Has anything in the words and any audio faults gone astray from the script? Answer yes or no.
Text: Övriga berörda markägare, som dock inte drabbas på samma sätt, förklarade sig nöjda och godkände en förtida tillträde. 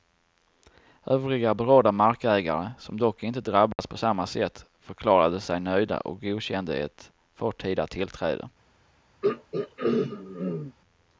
yes